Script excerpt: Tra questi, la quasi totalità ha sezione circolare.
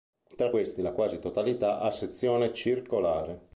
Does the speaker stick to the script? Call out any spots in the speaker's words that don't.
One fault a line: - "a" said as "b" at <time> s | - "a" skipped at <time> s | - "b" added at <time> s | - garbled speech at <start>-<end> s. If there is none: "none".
none